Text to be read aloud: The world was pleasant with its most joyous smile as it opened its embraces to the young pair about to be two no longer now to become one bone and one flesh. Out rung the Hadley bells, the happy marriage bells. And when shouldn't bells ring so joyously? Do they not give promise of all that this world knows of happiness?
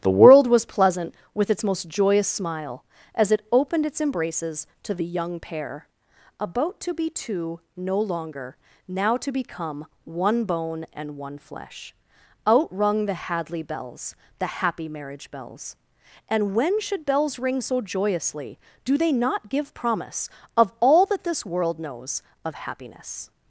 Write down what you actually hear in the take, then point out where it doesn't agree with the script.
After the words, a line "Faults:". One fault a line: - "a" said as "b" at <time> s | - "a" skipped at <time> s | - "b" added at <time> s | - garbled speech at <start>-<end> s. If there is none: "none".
The world was pleasant with its most joyous smile as it opened its embraces to the young pair about to be two no longer now to become one bone and one flesh. Out rung the Hadley bells, the happy marriage bells. And when should bells ring so joyously? Do they not give promise of all that this world knows of happiness?
Faults:
- "shouldn't" said as "should" at 16.8 s